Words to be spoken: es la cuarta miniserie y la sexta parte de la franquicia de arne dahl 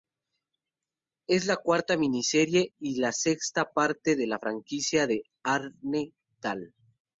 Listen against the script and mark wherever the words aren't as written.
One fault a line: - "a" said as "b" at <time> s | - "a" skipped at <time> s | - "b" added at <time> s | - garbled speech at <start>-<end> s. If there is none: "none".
none